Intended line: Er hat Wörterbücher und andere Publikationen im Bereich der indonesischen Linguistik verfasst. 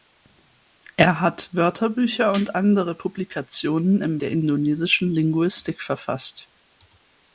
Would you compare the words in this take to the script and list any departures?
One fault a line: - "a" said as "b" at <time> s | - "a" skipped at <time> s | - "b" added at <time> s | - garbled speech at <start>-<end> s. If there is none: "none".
- "Bereich" skipped at 4.2 s